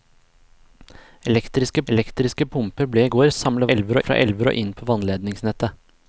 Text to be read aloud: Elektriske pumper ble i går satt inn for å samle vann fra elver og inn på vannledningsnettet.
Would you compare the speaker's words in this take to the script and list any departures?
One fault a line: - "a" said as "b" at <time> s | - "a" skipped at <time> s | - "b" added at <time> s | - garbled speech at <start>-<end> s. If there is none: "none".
- "elektriske" added at 1.9 s
- "satt inn for" skipped at 3.3 s
- "vann" said as "elver" at 3.7 s